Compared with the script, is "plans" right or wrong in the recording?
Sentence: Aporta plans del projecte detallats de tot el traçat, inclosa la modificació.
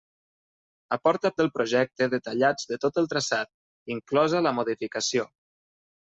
wrong